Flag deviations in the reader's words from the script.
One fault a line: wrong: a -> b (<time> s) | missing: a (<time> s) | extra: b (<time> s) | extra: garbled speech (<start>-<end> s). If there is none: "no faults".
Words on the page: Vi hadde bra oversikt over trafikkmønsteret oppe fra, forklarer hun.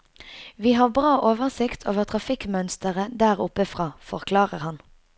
wrong: hadde -> har (0.8 s)
extra: der (3.2 s)
wrong: hun -> han (4.7 s)